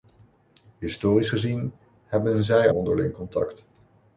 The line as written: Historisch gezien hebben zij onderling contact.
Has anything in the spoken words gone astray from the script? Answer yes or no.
no